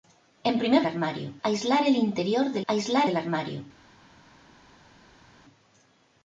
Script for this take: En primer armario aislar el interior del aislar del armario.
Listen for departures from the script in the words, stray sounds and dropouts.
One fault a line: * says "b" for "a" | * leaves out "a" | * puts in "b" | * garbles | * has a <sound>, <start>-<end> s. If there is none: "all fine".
all fine